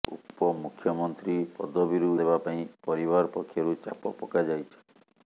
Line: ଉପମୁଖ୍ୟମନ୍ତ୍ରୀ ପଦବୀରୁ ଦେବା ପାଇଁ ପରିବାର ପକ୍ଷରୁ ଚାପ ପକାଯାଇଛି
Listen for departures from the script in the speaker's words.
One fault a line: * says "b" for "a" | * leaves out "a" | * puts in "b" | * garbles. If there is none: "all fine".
all fine